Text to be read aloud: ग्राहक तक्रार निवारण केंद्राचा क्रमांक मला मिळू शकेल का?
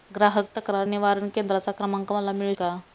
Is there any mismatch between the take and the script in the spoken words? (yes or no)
yes